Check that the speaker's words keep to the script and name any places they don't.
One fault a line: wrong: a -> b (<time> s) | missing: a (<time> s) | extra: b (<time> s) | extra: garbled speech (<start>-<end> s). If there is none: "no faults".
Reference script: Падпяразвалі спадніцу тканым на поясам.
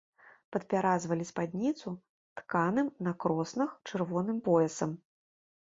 extra: кроснах чырвоным (3.2 s)